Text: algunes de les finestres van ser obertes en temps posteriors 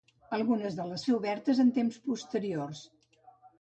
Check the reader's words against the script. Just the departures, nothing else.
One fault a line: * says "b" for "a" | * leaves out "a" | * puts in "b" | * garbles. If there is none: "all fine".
* leaves out "finestres van"